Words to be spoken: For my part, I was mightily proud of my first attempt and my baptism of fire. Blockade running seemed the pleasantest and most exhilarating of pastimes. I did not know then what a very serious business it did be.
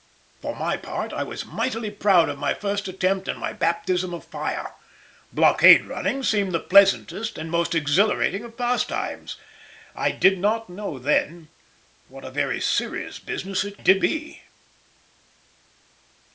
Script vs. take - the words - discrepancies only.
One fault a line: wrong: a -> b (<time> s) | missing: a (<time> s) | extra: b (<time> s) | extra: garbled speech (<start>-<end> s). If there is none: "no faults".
no faults